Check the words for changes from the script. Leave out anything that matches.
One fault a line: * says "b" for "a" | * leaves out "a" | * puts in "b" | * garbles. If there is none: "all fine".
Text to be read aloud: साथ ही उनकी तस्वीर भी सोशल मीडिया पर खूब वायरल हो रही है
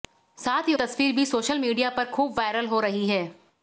* leaves out "उनकी"